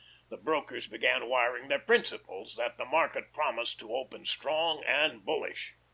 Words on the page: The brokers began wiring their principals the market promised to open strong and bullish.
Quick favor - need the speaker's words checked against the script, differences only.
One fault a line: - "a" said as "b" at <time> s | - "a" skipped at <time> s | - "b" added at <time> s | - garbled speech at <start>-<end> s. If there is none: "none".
- "that" added at 2.6 s